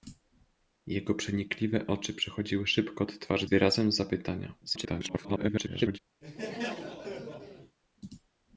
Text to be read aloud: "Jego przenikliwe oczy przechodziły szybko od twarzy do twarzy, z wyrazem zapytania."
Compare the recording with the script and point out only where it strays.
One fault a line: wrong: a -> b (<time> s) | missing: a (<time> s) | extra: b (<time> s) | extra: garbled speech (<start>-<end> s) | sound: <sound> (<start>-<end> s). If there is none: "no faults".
missing: do twarzy z (3.5 s)
extra: garbled speech (4.6-6.0 s)
sound: laugh (6.2-7.8 s)